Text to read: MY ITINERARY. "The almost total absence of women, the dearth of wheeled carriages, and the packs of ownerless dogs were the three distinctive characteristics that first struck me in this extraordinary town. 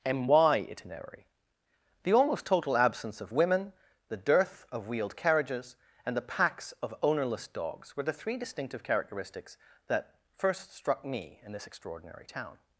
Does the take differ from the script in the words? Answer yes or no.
no